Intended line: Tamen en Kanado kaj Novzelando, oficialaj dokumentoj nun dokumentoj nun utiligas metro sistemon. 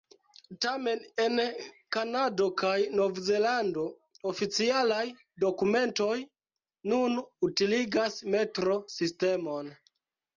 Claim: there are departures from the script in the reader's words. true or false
true